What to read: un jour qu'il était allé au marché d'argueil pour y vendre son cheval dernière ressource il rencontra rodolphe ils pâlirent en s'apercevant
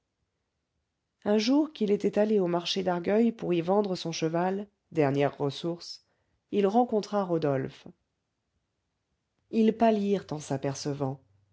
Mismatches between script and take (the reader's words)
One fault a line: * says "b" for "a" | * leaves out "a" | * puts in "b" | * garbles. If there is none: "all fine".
all fine